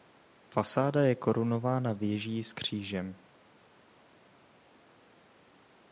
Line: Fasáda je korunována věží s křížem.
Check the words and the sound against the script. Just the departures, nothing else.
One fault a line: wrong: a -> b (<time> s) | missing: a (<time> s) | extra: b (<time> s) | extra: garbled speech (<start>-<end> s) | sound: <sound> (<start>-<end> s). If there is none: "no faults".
no faults